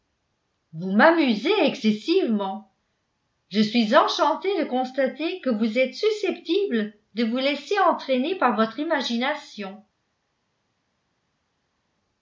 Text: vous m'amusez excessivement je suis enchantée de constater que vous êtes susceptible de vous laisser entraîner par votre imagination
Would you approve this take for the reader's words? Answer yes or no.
yes